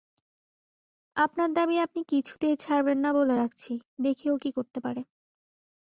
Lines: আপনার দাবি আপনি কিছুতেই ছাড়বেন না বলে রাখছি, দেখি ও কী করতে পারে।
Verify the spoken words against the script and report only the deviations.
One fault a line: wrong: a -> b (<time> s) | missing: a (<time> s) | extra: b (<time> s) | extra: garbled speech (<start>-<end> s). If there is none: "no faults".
no faults